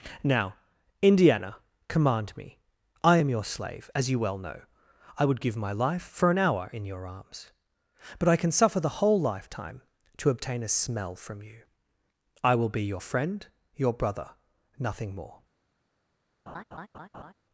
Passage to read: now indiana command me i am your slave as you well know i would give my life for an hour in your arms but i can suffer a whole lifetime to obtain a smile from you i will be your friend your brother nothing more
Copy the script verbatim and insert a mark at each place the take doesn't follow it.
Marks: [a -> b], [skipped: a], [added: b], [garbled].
now indiana command me i am your slave as you well know i would give my life for an hour in your arms but i can suffer [a -> the] whole lifetime to obtain a [smile -> smell] from you i will be your friend your brother nothing more